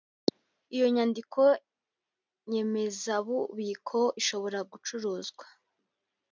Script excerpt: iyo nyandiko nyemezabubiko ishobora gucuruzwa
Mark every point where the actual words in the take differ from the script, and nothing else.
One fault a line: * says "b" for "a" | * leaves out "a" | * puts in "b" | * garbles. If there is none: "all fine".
all fine